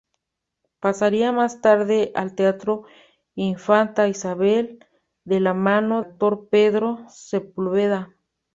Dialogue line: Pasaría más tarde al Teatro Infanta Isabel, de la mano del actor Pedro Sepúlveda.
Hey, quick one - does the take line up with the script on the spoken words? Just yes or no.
no